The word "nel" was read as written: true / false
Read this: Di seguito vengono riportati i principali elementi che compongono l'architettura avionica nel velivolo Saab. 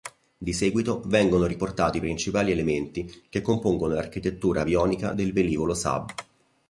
false